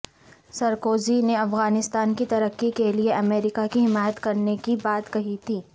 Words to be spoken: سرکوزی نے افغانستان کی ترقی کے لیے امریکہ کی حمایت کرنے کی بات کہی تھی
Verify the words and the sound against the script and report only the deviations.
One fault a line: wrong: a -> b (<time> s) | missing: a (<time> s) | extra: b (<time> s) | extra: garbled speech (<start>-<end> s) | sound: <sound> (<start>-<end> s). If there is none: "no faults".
no faults